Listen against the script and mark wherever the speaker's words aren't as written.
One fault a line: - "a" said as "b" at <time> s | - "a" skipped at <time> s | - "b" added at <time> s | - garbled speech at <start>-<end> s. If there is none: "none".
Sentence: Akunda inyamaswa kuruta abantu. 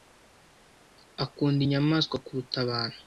none